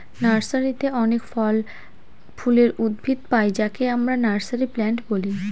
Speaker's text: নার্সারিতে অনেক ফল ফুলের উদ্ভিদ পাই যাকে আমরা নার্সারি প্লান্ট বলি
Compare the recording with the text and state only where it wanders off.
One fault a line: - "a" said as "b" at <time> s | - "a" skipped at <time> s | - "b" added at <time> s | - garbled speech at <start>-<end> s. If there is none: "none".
none